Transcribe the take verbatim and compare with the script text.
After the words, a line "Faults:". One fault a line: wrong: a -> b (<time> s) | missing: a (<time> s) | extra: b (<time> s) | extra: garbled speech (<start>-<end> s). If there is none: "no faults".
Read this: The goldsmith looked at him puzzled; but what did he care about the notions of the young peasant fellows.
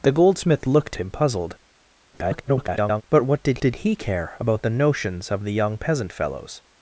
The goldsmith looked him puzzled; [garbled] but what did did he care about the notions of the young peasant fellows.
Faults:
missing: at (1.0 s)
extra: garbled speech (2.1-3.0 s)
extra: did (3.6 s)